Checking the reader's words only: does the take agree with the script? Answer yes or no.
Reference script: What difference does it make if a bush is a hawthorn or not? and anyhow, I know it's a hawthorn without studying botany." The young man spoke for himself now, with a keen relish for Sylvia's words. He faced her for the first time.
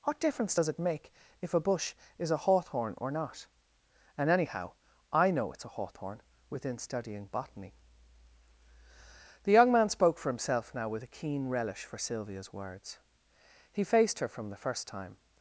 no